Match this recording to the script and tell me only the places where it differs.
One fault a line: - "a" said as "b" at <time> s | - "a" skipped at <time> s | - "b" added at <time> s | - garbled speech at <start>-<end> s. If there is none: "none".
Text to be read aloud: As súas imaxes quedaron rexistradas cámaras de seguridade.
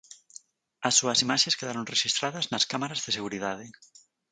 - "nas" added at 2.5 s